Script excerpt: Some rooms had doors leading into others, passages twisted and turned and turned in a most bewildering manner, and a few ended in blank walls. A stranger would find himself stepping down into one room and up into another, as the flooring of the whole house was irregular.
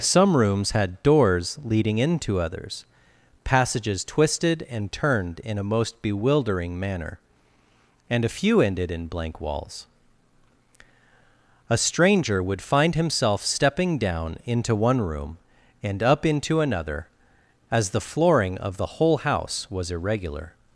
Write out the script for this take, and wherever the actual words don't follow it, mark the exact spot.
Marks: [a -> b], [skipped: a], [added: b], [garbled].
Some rooms had doors leading into others, passages twisted and turned [skipped: and turned] in a most bewildering manner, and a few ended in blank walls. A stranger would find himself stepping down into one room and up into another, as the flooring of the whole house was irregular.